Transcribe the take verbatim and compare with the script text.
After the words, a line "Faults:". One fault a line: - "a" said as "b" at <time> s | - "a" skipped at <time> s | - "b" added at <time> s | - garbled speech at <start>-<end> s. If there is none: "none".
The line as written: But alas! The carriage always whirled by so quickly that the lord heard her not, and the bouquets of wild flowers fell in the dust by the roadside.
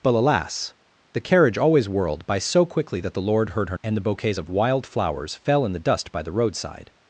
But alas! The carriage always whirled by so quickly that the lord heard her and the bouquets of wild flowers fell in the dust by the roadside.
Faults:
- "not" skipped at 3.8 s